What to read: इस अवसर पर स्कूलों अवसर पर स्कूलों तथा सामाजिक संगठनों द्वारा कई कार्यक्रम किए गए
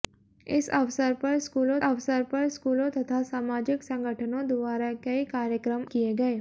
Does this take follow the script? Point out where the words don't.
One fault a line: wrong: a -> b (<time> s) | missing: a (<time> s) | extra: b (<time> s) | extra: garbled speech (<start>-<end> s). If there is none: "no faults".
no faults